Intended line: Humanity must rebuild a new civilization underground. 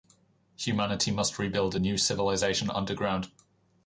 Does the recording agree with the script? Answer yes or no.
yes